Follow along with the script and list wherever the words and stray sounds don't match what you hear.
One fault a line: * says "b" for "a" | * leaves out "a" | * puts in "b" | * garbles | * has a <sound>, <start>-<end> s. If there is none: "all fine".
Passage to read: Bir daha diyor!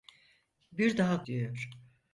all fine